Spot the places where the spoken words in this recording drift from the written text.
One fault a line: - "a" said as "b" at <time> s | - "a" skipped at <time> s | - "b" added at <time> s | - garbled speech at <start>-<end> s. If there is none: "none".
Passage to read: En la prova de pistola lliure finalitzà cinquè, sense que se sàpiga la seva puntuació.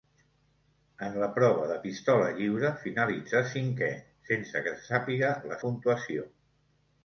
- "seva" skipped at 5.6 s